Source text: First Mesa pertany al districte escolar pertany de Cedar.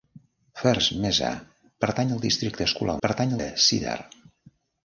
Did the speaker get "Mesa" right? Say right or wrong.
right